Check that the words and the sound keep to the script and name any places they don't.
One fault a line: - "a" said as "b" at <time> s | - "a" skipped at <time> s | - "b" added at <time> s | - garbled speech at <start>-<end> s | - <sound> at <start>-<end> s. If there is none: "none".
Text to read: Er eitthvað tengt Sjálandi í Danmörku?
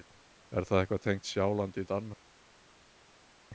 - "það" added at 0.7 s